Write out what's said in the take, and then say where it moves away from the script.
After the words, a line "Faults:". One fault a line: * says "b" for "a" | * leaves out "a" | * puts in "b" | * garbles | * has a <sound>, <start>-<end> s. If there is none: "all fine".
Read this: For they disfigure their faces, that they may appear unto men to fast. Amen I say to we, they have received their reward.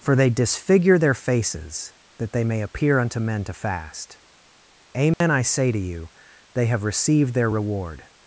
For they disfigure their faces, that they may appear unto men to fast. Amen I say to you, they have received their reward.
Faults:
* has a dropout, 5.1-5.2 s
* says "you" for "we"